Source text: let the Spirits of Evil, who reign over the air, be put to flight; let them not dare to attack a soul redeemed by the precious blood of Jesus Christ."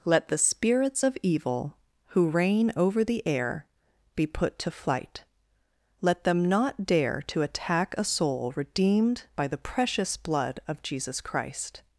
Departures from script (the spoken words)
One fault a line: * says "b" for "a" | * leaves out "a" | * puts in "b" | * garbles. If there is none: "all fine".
all fine